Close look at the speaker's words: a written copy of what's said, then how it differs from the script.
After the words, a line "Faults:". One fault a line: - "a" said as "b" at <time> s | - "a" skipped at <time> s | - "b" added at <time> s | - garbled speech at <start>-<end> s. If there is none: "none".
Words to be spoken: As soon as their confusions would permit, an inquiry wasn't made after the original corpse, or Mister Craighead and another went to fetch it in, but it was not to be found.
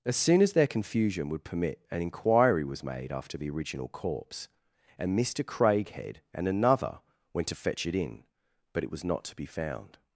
As soon as their confusion would permit, an inquiry was made after the original corpse, and Mister Craighead and another went to fetch it in, but it was not to be found.
Faults:
- "confusions" said as "confusion" at 0.7 s
- "wasn't" said as "was" at 2.6 s
- "or" said as "and" at 5.0 s